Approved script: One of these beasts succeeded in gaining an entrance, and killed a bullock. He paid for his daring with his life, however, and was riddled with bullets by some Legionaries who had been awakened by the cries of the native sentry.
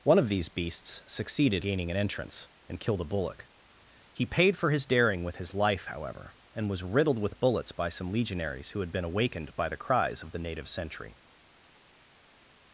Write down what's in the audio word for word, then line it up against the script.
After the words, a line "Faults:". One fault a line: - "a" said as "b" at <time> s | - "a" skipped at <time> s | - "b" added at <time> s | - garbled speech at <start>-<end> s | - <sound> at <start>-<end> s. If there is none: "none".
One of these beasts succeeded gaining an entrance, and killed a bullock. He paid for his daring with his life, however, and was riddled with bullets by some Legionaries who had been awakened by the cries of the native sentry.
Faults:
- "in" skipped at 1.6 s